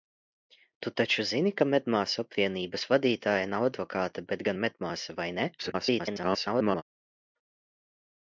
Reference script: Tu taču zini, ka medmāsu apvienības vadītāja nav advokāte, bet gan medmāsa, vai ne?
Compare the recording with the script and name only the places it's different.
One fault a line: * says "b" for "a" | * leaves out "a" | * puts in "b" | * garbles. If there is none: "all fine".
* garbles